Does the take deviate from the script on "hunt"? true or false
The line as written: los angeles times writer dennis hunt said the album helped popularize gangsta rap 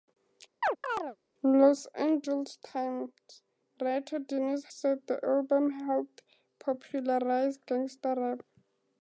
true